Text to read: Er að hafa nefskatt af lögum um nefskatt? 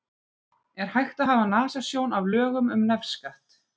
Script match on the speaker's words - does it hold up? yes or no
no